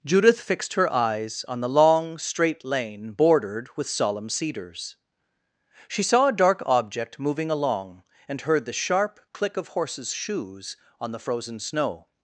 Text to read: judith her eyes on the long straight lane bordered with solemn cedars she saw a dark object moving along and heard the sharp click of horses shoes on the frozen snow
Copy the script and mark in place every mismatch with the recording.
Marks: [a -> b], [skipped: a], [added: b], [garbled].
judith [added: fixed] her eyes on the long straight lane bordered with solemn cedars she saw a dark object moving along and heard the sharp click of horses shoes on the frozen snow